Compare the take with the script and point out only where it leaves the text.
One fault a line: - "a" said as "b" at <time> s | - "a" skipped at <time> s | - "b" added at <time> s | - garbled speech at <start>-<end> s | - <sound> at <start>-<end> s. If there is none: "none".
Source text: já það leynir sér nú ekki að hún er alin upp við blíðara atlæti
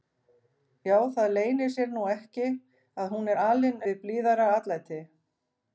- "upp" skipped at 3.9 s